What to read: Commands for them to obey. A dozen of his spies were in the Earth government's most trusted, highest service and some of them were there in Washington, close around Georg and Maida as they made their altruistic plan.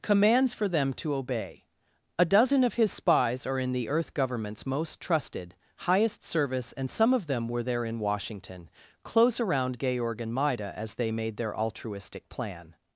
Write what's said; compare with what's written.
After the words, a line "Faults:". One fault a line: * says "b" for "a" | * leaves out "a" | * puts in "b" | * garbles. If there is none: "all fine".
Commands for them to obey. A dozen of his spies are in the Earth government's most trusted, highest service and some of them were there in Washington, close around Georg and Maida as they made their altruistic plan.
Faults:
* says "are" for "were"